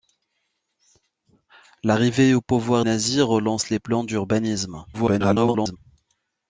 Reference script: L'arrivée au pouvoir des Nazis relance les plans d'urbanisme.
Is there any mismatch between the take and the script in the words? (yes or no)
yes